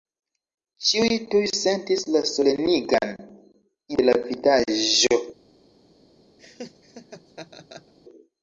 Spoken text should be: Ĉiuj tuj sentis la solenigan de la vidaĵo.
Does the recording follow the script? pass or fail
pass